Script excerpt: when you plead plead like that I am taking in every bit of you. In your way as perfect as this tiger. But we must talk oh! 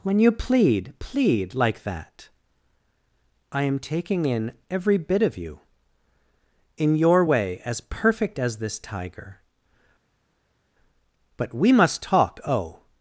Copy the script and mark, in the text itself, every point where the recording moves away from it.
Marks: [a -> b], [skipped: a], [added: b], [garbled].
when you plead plead like that I am taking in every bit of you. In your way as perfect as this tiger. But we must talk oh!